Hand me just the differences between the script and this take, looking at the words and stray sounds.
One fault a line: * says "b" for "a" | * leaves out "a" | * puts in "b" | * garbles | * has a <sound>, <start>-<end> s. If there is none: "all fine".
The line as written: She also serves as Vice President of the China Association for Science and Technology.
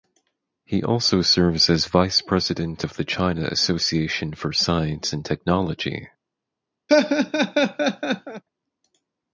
* says "He" for "She"
* has a laugh, 6.9-8.4 s